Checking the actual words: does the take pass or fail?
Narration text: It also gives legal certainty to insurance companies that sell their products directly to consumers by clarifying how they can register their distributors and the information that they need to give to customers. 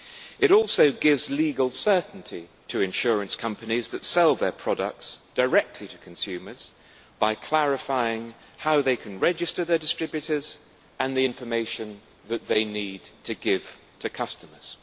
pass